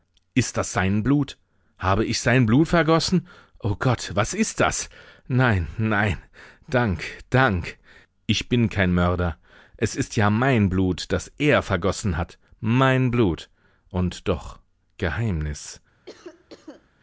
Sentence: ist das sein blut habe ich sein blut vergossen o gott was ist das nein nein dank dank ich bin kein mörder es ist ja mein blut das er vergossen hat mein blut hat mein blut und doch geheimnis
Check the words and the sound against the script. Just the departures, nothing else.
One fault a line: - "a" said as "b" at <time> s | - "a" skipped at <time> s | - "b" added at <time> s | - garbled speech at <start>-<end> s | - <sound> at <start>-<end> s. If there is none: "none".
- "hat mein blut" skipped at 13.5 s
- cough at 16.1-16.9 s